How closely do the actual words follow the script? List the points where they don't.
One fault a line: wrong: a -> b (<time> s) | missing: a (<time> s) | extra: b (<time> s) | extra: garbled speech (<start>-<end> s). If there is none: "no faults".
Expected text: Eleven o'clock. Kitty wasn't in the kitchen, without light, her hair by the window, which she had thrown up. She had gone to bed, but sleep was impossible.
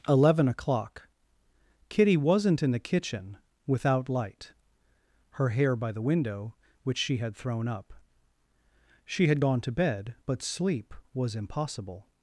no faults